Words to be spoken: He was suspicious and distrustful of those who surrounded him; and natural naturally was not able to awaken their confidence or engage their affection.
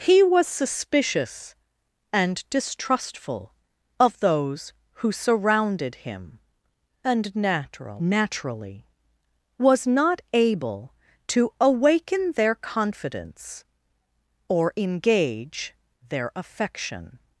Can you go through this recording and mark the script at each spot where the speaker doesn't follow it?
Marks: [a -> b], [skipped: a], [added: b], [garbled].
He was suspicious and distrustful of those who surrounded him; and natural naturally was not able to awaken their confidence or engage their affection.